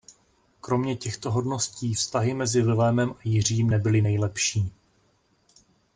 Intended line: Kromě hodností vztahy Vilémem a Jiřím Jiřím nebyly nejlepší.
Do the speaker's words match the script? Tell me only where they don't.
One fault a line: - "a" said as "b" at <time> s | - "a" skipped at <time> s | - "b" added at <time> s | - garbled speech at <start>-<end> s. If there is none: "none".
- "těchto" added at 0.9 s
- "mezi" added at 2.3 s
- "Jiřím" skipped at 3.7 s